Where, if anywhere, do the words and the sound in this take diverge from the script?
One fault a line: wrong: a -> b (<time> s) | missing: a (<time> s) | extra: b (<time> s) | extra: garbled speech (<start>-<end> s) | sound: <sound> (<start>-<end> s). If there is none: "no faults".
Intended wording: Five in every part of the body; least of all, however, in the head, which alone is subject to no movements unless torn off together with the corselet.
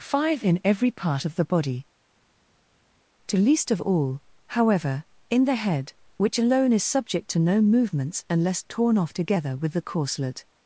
extra: to (3.3 s)